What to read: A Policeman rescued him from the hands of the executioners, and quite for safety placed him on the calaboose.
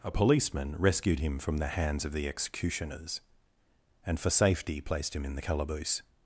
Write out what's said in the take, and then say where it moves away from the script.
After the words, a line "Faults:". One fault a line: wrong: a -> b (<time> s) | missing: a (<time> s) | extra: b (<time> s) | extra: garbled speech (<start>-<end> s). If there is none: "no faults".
A Policeman rescued him from the hands of the executioners, and for safety placed him in the calaboose.
Faults:
missing: quite (4.2 s)
wrong: on -> in (5.2 s)